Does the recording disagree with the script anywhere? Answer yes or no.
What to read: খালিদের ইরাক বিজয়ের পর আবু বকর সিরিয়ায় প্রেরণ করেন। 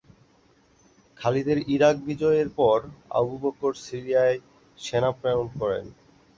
yes